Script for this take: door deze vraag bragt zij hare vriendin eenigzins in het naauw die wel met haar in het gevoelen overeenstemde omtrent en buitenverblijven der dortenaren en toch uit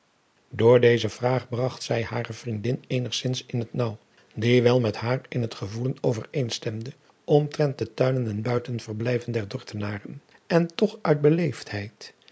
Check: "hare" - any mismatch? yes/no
no